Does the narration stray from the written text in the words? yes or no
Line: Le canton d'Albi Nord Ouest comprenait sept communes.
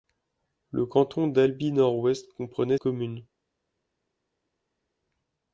yes